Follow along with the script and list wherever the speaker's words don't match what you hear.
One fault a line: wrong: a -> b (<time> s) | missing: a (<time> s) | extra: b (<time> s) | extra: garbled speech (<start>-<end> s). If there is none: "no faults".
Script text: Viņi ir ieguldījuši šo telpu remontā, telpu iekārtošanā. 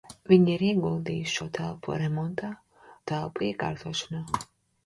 no faults